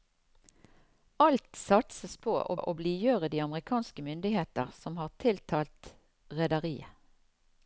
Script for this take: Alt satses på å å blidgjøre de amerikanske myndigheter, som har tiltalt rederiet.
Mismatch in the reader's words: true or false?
false